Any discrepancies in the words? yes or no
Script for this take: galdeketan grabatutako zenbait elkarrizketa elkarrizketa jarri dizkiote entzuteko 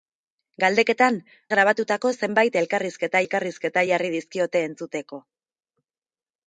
no